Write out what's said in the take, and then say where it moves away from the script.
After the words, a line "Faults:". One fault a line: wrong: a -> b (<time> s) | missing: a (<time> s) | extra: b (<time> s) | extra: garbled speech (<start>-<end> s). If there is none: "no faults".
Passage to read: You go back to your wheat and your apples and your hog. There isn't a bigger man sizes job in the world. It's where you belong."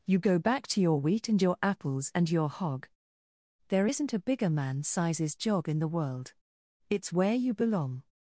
You go back to your wheat and your apples and your hog. There isn't a bigger man sizes job in the world. It's where you belong."
Faults:
no faults